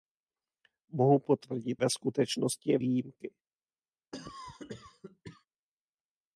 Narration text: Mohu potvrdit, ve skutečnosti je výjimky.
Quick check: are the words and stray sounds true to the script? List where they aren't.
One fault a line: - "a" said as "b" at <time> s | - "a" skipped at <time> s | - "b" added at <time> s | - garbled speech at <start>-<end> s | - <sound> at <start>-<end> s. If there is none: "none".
- cough at 4.1-5.5 s